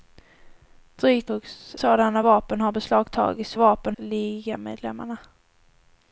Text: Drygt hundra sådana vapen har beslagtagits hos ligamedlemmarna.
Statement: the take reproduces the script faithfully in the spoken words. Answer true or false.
false